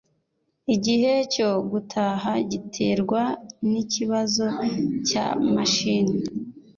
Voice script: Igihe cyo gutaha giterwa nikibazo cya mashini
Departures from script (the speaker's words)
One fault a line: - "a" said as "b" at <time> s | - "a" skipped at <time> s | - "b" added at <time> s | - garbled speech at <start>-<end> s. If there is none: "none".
none